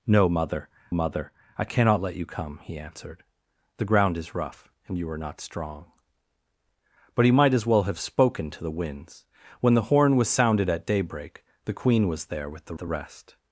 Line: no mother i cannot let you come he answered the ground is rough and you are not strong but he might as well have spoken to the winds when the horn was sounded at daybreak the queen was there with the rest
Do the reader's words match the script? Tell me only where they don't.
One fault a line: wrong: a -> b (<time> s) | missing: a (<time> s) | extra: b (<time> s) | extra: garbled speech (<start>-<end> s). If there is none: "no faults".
extra: mother (0.9 s)
extra: the (12.8 s)